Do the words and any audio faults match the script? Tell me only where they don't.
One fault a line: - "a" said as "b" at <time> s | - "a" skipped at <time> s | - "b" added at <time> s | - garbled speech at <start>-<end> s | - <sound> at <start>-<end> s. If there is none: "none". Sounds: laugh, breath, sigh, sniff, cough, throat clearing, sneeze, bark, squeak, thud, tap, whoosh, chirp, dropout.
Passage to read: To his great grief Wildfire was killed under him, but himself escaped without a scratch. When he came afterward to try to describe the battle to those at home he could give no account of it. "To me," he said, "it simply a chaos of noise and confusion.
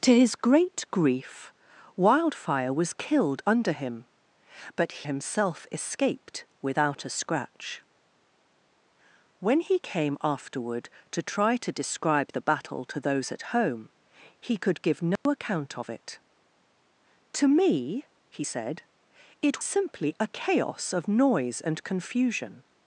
- dropout at 15.2-15.3 s